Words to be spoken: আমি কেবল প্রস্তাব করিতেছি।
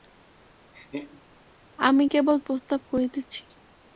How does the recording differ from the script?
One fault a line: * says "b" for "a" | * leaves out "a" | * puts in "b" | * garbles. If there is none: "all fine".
all fine